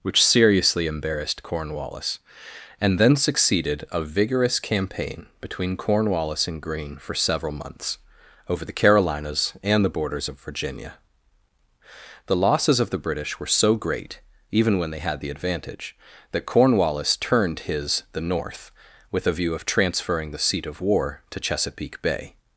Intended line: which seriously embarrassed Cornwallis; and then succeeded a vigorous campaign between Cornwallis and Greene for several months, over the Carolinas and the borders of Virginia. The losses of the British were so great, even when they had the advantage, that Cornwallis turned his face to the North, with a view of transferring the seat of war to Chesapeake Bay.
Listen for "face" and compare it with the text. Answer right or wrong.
wrong